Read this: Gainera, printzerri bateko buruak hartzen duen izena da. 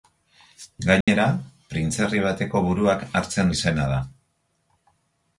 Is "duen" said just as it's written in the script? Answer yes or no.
no